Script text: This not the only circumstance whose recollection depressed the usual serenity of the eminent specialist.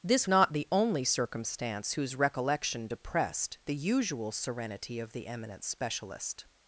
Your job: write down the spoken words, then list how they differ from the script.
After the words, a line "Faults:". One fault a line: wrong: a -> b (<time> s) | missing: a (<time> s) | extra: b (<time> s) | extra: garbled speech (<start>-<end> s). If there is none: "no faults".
This not the only circumstance whose recollection depressed the usual serenity of the eminent specialist.
Faults:
no faults